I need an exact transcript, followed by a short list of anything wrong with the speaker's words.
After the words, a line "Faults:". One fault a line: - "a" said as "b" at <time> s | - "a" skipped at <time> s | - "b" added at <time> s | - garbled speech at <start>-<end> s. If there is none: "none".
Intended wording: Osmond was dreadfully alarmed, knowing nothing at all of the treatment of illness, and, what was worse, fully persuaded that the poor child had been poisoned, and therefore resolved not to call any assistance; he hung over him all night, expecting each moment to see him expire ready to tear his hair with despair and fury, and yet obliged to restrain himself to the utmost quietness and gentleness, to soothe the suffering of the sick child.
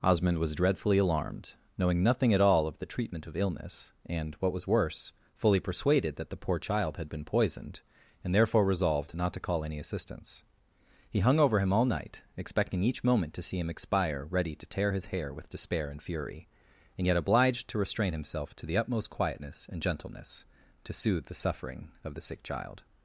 Osmond was dreadfully alarmed, knowing nothing at all of the treatment of illness, and, what was worse, fully persuaded that the poor child had been poisoned, and therefore resolved not to call any assistance; he hung over him all night, expecting each moment to see him expire ready to tear his hair with despair and fury, and yet obliged to restrain himself to the utmost quietness and gentleness, to soothe the suffering of the sick child.
Faults:
none